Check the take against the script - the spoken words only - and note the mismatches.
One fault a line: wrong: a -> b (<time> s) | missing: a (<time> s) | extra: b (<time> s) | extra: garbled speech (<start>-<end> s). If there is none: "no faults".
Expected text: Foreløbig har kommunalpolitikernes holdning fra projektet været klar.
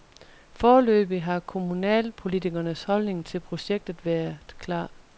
wrong: fra -> til (3.2 s)